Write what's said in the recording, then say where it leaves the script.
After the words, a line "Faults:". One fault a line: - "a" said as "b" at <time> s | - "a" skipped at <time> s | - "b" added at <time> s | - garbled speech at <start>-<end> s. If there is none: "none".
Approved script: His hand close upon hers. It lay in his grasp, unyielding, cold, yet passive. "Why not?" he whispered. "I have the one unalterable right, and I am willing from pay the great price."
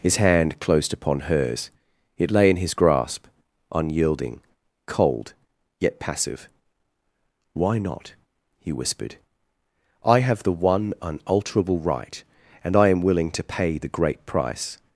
His hand closed upon hers. It lay in his grasp, unyielding, cold, yet passive. "Why not?" he whispered. "I have the one unalterable right, and I am willing to pay the great price."
Faults:
- "close" said as "closed" at 0.6 s
- "from" said as "to" at 13.3 s